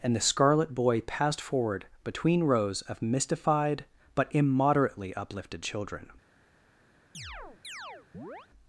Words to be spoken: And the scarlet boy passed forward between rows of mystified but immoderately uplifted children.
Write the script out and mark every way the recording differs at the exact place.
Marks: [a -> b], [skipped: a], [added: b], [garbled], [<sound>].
And the scarlet boy passed forward between rows of mystified but immoderately uplifted children. [chirp]